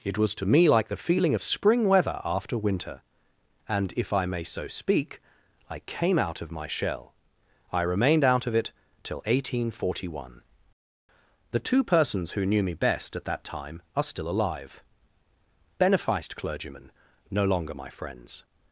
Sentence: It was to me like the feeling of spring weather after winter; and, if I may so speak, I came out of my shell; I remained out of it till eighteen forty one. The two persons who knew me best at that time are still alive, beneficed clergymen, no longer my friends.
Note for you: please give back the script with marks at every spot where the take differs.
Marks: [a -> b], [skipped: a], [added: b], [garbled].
It was to me like the feeling of spring weather after winter; and, if I may so speak, I came out of my shell; I remained out of it till eighteen forty one. The two persons who knew me best at that time are still alive, beneficed clergymen, no longer my friends.